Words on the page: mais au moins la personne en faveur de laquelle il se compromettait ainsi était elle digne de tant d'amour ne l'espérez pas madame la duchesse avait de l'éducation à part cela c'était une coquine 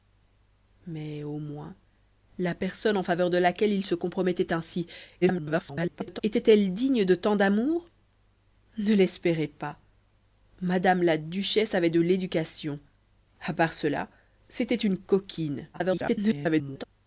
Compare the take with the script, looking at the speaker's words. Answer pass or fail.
fail